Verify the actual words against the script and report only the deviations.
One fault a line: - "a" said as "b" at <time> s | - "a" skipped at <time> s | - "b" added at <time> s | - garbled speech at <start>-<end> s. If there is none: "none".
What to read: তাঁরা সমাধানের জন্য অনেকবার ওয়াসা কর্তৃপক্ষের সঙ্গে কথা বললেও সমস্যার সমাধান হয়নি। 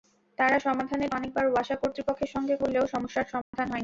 - "জন্য" skipped at 1.1 s
- "কথা" skipped at 2.5 s